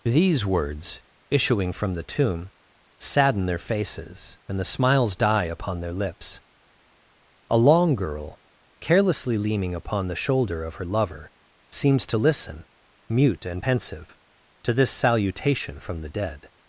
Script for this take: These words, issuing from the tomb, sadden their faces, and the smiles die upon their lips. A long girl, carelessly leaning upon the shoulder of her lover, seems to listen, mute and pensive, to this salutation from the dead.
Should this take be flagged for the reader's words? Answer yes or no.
no